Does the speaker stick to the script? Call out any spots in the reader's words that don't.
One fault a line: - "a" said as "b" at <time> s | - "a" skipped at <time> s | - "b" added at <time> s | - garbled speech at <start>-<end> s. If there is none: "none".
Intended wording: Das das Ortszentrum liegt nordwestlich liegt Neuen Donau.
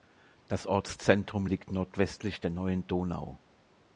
- "das" skipped at 0.7 s
- "liegt" said as "der" at 2.4 s